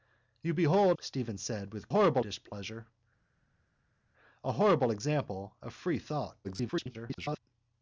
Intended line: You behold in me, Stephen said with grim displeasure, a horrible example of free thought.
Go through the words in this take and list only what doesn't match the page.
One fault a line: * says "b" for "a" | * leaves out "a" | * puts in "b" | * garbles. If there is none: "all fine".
* leaves out "in me"
* says "horrible" for "grim"
* garbles